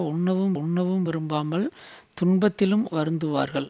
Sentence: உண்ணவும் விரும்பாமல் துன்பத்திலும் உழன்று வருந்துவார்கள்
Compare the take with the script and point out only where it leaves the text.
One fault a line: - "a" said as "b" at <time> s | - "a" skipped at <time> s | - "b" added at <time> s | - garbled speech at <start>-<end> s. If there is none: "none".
- "உண்ணவும்" added at 0.5 s
- "உழன்று" skipped at 2.8 s